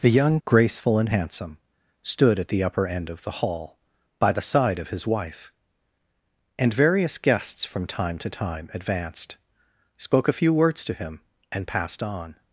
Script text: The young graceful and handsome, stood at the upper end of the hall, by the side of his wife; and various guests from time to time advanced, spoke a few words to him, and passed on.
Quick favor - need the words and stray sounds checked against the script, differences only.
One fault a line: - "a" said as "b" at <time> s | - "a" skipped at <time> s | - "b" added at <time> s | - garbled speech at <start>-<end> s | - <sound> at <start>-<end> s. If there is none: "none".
none